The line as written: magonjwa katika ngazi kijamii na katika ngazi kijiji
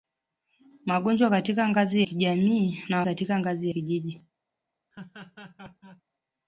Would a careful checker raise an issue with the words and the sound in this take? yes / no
yes